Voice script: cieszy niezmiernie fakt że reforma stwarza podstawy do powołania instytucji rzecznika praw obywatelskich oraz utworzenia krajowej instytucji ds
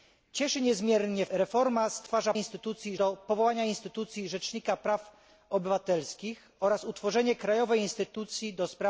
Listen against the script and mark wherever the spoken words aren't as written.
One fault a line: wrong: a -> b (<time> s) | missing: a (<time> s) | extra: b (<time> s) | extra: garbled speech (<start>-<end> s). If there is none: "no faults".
missing: fakt że (1.2 s)
wrong: podstawy -> instytucji (2.3 s)